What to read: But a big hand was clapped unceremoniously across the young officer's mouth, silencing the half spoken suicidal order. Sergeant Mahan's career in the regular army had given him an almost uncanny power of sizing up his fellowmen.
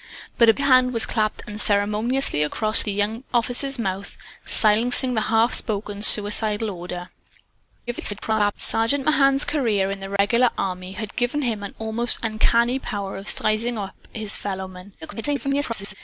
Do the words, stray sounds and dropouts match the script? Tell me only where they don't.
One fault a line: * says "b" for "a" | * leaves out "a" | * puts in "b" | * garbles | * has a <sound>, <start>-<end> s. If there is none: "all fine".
* leaves out "big"
* garbles
* has a dropout, 10.2-10.2 s
* garbles